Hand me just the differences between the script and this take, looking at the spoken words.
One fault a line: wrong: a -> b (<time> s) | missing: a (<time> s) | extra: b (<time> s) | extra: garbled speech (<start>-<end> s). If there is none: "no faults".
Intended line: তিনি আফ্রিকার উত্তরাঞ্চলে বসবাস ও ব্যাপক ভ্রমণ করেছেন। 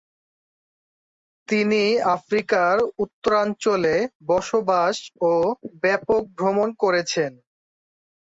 no faults